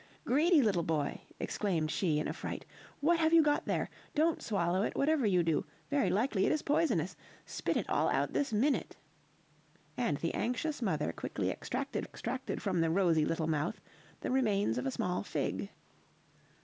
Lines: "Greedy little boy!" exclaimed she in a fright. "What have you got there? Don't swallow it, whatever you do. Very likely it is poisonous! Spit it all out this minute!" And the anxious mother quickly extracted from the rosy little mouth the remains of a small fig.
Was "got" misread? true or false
false